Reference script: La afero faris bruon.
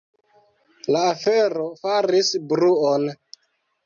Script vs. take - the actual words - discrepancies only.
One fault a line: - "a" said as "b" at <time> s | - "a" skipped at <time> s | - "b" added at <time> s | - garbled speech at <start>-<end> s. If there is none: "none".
none